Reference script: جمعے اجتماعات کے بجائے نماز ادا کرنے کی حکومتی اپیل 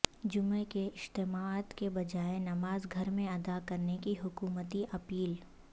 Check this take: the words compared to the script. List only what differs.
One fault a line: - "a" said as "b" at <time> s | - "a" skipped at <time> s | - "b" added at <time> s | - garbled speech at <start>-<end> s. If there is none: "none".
- "کے" added at 0.7 s
- "گھر میں" added at 2.9 s